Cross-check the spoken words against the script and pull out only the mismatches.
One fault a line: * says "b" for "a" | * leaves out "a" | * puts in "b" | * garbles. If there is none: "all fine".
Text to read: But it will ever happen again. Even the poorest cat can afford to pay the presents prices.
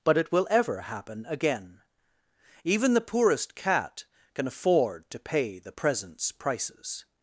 all fine